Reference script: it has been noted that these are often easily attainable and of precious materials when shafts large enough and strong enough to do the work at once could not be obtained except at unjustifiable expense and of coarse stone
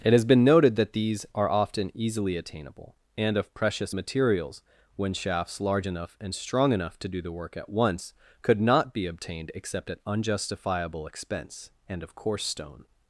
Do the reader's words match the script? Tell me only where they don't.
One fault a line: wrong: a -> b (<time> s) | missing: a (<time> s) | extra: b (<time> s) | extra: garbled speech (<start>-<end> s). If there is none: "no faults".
no faults